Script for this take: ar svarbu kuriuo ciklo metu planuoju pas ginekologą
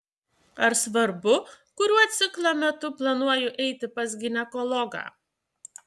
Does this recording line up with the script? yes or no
no